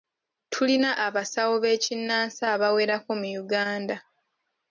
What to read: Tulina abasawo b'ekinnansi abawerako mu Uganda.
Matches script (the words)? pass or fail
pass